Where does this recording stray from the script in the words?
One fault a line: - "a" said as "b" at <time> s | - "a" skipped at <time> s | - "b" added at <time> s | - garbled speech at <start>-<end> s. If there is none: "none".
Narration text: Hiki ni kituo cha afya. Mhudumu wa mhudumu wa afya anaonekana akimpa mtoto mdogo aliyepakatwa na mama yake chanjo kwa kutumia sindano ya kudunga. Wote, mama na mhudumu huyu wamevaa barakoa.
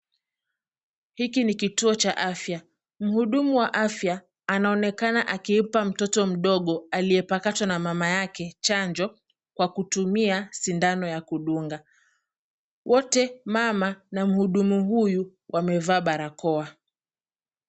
- "mhudumu wa" skipped at 3.7 s